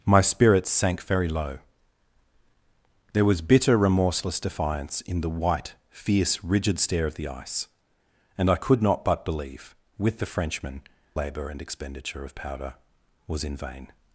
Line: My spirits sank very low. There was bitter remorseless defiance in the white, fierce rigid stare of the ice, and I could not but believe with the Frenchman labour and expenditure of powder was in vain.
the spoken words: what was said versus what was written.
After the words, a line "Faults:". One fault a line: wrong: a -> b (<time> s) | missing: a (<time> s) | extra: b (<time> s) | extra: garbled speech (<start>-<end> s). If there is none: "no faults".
My spirits sank very low. There was bitter remorseless defiance in the white, fierce rigid stare of the ice, and I could not but believe with the Frenchman labour and expenditure of powder was in vain.
Faults:
no faults